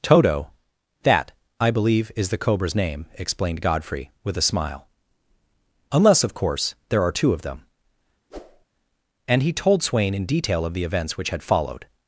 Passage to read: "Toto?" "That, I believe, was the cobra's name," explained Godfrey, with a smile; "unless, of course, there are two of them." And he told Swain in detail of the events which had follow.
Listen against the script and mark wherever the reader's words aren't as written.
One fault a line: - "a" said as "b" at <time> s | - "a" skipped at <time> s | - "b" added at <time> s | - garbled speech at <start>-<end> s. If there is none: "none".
- "was" said as "is" at 2.1 s
- "follow" said as "followed" at 11.4 s